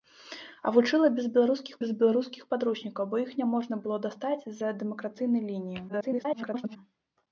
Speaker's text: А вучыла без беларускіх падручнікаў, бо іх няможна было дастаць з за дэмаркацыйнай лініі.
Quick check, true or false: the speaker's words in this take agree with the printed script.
false